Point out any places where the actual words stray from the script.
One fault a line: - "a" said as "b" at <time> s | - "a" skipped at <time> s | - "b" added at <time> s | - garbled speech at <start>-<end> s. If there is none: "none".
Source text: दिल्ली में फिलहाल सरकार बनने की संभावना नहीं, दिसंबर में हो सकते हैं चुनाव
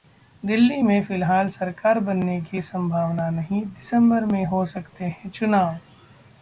none